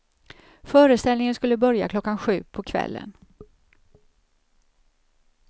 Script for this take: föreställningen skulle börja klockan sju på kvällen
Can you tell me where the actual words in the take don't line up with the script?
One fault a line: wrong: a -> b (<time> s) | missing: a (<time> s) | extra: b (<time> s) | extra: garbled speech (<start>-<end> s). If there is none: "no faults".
no faults